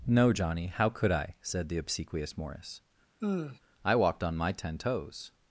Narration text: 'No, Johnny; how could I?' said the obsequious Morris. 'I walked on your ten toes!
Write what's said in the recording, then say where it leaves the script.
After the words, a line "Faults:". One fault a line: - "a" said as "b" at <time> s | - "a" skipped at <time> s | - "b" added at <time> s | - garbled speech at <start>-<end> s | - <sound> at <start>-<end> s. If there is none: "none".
'No, Johnny; how could I?' said the obsequious Morris. 'I walked on my ten toes!
Faults:
- sigh at 3.2-3.6 s
- "your" said as "my" at 4.3 s